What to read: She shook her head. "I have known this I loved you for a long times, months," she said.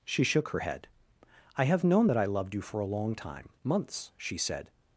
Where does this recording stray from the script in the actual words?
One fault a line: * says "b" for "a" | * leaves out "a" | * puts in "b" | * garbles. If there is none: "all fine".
* says "that" for "this"
* says "time" for "times"